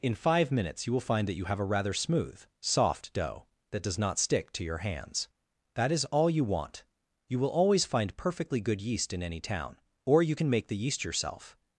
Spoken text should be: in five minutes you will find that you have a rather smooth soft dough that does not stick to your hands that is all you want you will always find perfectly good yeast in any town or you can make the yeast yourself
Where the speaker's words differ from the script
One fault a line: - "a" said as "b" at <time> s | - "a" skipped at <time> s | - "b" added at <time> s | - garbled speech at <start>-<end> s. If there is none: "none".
none